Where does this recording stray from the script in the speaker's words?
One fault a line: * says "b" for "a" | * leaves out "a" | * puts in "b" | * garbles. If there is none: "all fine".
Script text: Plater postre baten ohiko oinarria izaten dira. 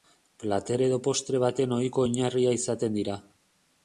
* puts in "edo"